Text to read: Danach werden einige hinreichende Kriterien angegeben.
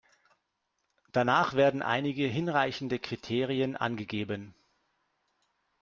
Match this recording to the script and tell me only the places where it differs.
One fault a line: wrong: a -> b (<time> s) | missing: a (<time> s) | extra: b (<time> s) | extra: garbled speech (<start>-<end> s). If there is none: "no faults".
no faults